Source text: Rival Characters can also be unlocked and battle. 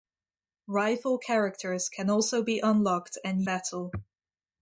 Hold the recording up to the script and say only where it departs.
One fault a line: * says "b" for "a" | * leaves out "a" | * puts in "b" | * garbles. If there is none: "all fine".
all fine